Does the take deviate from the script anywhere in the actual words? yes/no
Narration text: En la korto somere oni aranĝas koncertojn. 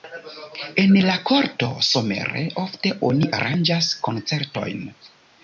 yes